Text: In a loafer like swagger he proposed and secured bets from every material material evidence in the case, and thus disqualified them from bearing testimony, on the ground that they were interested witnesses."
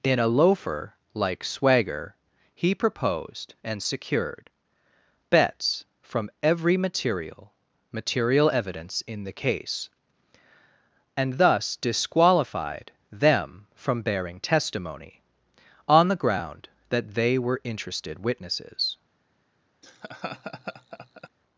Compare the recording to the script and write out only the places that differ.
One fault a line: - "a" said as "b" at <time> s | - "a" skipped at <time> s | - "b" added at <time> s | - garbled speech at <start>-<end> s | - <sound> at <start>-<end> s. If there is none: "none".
- laugh at 19.8-21.3 s